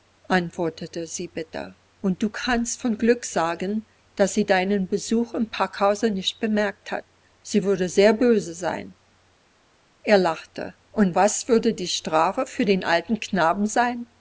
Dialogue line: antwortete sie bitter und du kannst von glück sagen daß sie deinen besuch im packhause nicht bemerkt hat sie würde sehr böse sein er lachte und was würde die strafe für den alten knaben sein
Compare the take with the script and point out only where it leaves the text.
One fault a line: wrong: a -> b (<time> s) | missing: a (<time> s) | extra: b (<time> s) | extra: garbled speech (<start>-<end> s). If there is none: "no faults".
no faults